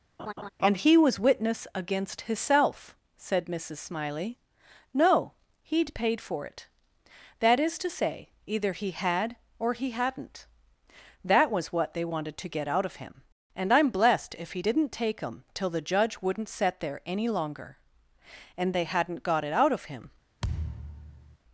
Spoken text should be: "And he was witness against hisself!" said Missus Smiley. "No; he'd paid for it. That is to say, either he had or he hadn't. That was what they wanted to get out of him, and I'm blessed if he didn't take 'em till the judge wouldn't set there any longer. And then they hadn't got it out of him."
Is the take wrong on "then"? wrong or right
wrong